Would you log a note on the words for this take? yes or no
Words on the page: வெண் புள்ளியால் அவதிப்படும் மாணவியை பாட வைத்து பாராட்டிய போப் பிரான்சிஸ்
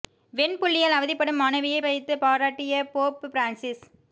yes